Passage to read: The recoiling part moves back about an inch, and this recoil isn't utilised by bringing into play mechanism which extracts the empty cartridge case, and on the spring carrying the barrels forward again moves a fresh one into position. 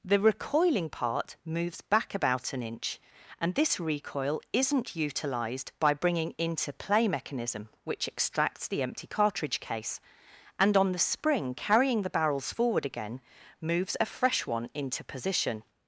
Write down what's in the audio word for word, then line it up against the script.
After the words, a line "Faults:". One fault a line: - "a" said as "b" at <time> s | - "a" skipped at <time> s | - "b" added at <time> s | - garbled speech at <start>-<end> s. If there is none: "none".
The recoiling part moves back about an inch, and this recoil isn't utilised by bringing into play mechanism which extracts the empty cartridge case, and on the spring carrying the barrels forward again moves a fresh one into position.
Faults:
none